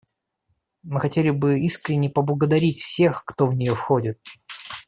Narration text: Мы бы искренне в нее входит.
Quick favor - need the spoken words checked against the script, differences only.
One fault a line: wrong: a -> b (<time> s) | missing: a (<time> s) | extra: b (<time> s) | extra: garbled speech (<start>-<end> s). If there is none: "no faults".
extra: хотели (1.0 s)
extra: поблагодарить всех кто (2.1 s)